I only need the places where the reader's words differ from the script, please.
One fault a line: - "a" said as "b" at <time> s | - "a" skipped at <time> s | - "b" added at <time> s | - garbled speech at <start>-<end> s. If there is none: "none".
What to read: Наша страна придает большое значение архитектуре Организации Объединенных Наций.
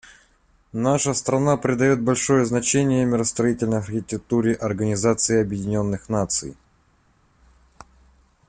- "миростроительной" added at 3.0 s